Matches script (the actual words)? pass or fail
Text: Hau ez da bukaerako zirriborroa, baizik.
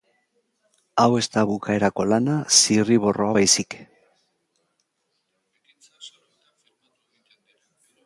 fail